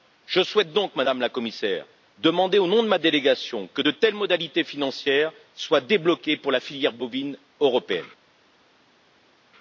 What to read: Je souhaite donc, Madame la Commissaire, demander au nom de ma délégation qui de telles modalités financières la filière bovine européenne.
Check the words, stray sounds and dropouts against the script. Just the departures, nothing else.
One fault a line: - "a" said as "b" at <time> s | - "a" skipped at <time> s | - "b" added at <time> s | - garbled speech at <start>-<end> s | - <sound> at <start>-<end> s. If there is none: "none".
- "qui" said as "que" at 3.7 s
- "soient débloquées pour" added at 5.5 s